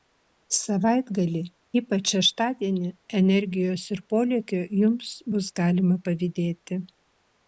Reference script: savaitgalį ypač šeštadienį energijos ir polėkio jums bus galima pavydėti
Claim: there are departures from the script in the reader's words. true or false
false